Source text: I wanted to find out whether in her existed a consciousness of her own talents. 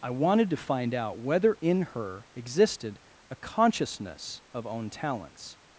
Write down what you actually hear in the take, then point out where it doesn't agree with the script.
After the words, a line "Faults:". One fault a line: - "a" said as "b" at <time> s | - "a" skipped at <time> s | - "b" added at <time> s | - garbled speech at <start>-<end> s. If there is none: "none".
I wanted to find out whether in her existed a consciousness of own talents.
Faults:
- "her" skipped at 4.7 s